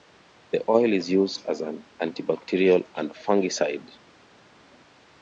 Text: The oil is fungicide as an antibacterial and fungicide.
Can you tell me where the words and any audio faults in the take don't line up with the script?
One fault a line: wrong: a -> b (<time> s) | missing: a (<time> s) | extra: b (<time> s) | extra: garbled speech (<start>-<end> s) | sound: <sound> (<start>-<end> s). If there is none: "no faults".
wrong: fungicide -> used (1.1 s)